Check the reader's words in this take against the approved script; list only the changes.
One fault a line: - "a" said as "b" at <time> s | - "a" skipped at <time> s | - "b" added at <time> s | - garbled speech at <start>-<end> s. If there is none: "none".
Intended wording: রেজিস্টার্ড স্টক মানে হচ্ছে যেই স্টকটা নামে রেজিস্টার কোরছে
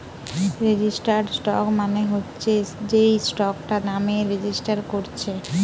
none